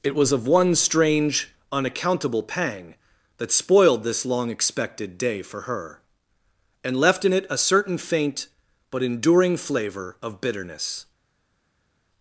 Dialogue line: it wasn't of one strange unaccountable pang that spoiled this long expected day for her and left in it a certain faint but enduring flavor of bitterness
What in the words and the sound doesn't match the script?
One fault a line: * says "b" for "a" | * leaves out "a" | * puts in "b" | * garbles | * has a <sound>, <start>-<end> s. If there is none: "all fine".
* says "was" for "wasn't"